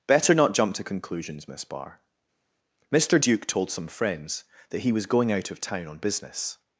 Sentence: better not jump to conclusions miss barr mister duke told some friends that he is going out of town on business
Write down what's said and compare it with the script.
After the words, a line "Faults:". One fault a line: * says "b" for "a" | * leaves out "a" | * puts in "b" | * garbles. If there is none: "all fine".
better not jump to conclusions miss barr mister duke told some friends that he was going out of town on business
Faults:
* says "was" for "is"